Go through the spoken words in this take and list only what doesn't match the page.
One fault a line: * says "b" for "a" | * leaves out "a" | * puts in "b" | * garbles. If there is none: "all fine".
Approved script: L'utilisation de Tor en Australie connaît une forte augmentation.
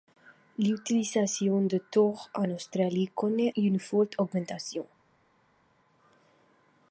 all fine